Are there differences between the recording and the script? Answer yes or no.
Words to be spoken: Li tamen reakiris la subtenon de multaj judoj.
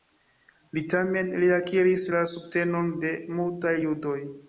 no